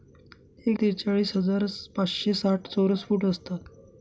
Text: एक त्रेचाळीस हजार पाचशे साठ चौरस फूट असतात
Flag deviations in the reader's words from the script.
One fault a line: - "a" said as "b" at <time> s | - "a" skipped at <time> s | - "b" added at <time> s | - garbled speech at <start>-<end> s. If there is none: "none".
none